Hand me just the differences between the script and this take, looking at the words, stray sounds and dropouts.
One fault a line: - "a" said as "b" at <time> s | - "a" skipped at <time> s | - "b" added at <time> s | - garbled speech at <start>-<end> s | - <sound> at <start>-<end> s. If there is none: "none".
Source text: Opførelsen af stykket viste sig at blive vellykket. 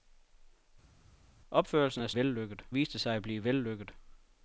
- "stykket" said as "vellykket" at 2.1 s